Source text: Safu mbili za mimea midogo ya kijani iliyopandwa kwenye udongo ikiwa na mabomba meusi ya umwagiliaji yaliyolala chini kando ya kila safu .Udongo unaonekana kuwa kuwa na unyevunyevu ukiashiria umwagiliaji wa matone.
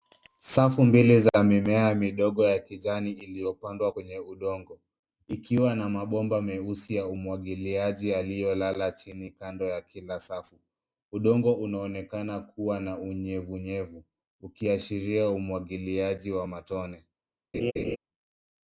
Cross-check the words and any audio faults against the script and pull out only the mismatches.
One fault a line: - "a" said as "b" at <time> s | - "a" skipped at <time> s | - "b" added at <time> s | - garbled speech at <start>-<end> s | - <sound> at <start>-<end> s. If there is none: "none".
- "kuwa" skipped at 12.8 s
- laugh at 17.5-18.0 s